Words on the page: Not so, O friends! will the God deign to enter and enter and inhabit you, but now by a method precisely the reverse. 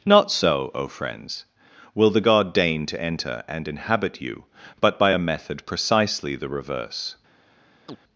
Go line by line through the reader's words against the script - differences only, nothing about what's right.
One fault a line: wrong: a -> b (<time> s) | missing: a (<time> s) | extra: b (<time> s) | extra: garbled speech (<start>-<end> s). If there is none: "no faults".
missing: enter and (3.7 s)
missing: now (5.0 s)